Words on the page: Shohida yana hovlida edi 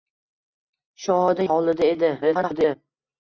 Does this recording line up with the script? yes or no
no